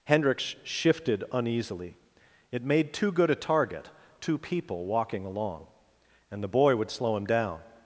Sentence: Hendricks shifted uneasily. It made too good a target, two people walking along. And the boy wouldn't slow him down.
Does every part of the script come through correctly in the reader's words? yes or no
no